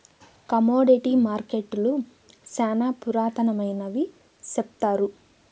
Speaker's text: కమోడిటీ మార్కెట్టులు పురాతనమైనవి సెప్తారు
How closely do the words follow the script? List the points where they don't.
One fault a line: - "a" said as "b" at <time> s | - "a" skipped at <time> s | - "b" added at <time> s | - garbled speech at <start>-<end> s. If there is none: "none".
- "శ్యానా" added at 2.5 s